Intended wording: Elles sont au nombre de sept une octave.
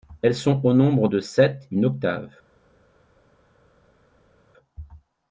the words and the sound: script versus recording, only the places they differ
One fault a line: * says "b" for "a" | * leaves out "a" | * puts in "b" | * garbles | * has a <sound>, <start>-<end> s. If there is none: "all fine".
all fine